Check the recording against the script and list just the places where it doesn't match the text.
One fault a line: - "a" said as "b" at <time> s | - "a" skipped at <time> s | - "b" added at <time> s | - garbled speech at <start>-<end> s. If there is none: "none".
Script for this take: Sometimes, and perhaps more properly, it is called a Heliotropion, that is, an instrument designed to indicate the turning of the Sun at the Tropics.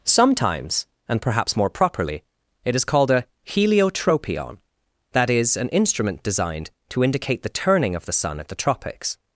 none